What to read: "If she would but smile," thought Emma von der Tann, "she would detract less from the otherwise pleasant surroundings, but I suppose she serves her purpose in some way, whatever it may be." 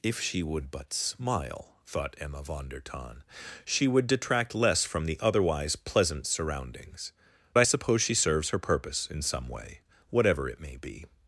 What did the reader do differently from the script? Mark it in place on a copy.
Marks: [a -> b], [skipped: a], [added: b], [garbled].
"If she would but smile," thought Emma von der Tann, "she would detract less from the otherwise pleasant surroundings, [skipped: but] I suppose she serves her purpose in some way, whatever it may be."